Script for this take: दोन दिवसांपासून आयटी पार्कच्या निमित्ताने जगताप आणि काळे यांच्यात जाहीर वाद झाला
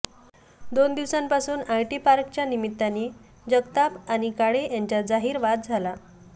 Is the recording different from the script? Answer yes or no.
no